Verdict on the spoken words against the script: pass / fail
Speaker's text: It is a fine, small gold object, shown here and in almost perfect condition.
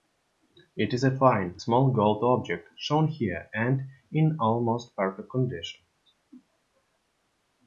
pass